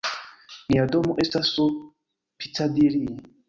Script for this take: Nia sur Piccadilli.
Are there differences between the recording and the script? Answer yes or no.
yes